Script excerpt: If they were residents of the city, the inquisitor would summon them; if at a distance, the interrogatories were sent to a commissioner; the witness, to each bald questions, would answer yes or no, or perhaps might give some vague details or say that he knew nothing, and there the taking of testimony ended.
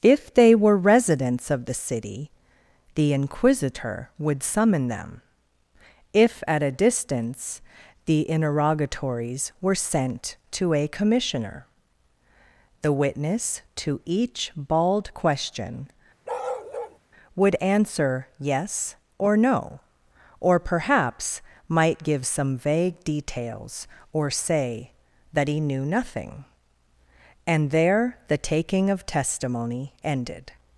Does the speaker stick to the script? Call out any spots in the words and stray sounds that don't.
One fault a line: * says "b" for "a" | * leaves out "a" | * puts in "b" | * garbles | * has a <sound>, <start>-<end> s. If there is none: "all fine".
* says "question" for "questions"
* has a bark, 16.2-17.0 s